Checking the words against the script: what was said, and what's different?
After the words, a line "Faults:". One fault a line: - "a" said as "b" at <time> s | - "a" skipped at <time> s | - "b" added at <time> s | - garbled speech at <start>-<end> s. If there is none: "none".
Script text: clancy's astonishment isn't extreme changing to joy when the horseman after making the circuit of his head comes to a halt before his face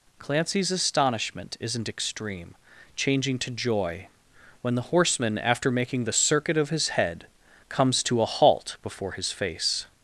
clancy's astonishment isn't extreme changing to joy when the horseman after making the circuit of his head comes to a halt before his face
Faults:
none